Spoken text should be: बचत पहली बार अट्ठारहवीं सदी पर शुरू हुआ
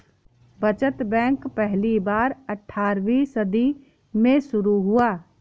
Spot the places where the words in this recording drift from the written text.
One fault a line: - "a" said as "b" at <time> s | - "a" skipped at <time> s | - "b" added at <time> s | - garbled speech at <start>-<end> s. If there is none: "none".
- "बैंक" added at 1.0 s
- "पर" said as "में" at 4.1 s